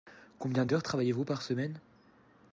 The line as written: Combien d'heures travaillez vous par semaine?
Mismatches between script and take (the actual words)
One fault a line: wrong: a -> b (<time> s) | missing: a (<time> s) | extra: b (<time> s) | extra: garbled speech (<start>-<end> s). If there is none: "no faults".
no faults